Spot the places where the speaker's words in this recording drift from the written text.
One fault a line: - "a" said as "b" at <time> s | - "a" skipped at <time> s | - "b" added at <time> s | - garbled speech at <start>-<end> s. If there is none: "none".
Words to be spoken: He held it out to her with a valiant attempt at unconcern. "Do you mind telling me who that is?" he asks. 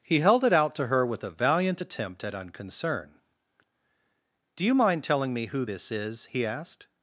- "that" said as "this" at 5.6 s
- "asks" said as "asked" at 6.4 s